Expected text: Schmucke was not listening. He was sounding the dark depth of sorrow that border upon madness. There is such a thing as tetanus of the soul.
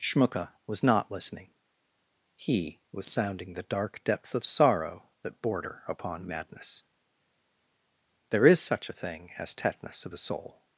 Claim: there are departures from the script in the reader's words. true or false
false